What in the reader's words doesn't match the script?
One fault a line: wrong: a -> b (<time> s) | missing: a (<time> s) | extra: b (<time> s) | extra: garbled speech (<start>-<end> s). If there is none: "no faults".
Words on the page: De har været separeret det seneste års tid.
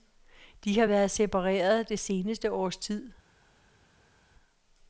no faults